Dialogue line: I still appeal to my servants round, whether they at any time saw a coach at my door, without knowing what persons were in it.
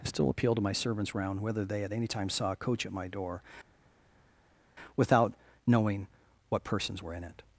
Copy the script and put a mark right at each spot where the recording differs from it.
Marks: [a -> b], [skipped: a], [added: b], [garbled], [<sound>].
I still appeal to my servants round, whether they at any time saw a coach at my door, without knowing what persons were in it.